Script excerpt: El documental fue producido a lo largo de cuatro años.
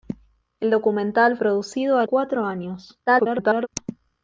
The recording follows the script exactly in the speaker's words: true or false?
false